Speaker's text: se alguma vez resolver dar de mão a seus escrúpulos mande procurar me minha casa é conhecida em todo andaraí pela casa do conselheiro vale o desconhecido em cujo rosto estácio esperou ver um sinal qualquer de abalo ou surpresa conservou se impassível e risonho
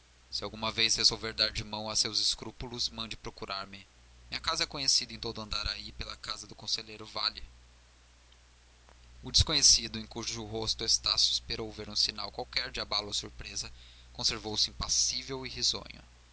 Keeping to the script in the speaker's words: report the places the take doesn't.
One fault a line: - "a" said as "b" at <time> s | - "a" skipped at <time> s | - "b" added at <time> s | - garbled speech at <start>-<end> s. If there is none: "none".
none